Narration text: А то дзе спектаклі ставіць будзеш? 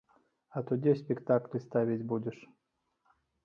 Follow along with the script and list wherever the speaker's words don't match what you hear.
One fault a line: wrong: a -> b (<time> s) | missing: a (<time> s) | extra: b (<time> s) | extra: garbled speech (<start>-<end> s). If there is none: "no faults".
no faults